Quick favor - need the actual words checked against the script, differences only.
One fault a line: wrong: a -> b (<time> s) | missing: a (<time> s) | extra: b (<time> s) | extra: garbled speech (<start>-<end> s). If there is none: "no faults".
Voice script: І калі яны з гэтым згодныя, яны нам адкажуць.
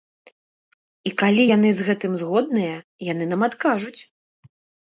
no faults